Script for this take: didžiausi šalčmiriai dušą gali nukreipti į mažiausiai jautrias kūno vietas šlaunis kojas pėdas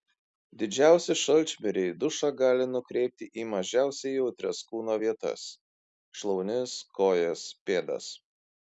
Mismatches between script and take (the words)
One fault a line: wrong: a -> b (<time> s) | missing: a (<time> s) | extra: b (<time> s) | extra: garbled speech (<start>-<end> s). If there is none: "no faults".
no faults